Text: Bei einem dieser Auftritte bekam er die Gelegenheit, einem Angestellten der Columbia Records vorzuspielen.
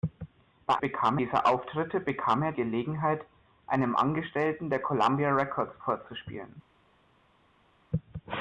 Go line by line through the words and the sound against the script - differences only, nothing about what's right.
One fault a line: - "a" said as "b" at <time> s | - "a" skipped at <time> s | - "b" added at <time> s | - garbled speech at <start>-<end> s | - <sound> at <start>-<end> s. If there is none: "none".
- "einem" said as "bekam" at 0.8 s
- "die" skipped at 2.5 s